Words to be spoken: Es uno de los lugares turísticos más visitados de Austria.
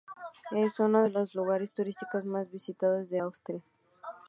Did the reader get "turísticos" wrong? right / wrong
right